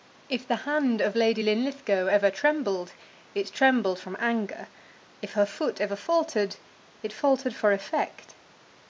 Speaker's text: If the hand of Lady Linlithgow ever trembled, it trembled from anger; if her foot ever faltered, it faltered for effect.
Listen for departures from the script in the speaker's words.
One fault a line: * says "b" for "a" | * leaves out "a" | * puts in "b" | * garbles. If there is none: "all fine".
all fine